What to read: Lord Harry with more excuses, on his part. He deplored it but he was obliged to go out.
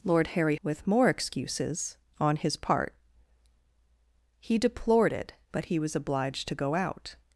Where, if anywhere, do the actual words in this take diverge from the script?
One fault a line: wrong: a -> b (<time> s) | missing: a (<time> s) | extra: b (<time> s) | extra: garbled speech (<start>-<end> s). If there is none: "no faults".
no faults